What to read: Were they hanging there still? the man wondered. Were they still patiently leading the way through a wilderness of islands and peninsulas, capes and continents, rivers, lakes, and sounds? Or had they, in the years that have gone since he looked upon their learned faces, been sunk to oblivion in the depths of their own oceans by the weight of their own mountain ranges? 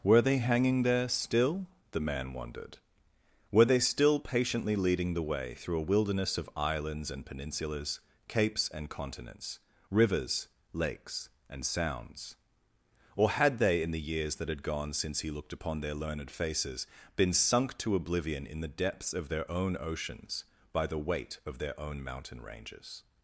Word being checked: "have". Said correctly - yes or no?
no